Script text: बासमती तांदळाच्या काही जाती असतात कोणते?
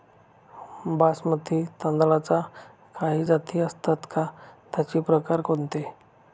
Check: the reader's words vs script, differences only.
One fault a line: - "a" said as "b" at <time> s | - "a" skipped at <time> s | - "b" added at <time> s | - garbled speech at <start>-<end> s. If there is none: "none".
- "का त्याचे प्रकार" added at 4.1 s